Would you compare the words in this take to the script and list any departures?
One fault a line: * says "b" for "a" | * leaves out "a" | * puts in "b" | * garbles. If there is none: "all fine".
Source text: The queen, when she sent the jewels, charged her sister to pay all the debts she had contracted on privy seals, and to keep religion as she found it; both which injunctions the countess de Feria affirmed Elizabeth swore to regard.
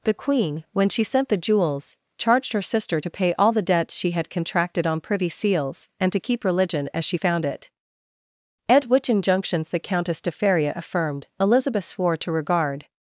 * says "at" for "both"